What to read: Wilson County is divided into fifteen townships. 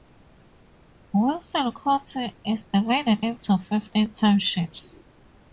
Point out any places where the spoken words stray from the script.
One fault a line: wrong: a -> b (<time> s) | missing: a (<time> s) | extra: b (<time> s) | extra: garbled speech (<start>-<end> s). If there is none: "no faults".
no faults